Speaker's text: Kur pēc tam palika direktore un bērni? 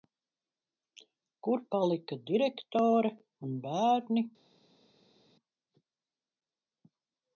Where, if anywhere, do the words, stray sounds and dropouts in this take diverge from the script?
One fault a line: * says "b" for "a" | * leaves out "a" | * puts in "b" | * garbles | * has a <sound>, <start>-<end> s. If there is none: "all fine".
* leaves out "pēc tam"